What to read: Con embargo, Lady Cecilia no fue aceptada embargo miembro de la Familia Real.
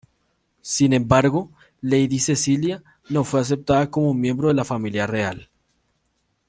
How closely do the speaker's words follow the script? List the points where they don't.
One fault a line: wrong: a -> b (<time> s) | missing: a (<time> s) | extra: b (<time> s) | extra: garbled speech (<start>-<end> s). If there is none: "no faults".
wrong: Con -> Sin (0.6 s)
wrong: embargo -> como (3.9 s)